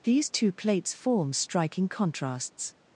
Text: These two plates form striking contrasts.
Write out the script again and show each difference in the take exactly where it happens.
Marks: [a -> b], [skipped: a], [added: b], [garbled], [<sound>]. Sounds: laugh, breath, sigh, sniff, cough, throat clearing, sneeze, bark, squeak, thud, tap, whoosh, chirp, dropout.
These two plates form striking contrasts.